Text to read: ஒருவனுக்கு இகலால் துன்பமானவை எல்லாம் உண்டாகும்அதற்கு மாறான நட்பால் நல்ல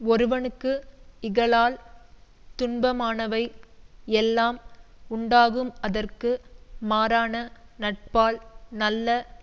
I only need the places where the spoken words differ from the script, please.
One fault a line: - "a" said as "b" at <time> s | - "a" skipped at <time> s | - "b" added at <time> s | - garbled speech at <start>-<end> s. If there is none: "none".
none